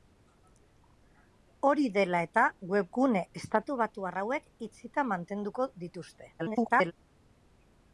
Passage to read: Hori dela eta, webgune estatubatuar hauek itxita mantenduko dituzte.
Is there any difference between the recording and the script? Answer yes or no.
yes